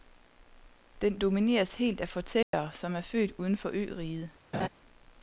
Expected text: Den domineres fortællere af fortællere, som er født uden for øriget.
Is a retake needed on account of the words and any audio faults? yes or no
yes